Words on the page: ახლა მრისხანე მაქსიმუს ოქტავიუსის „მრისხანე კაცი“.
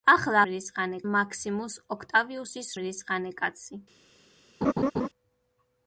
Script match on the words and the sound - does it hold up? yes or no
no